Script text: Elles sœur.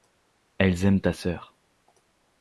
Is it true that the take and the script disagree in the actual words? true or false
true